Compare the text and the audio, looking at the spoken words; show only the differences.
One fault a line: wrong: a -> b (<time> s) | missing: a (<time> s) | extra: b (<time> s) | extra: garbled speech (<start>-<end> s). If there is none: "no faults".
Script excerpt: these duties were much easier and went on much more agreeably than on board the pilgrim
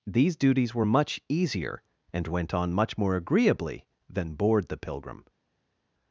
missing: on (4.3 s)